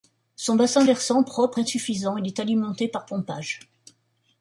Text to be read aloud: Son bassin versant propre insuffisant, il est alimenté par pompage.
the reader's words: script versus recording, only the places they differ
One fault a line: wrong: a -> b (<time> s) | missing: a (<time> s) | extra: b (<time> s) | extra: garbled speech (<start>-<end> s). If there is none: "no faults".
no faults